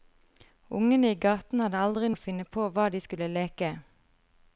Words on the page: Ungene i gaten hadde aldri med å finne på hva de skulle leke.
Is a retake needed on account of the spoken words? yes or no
no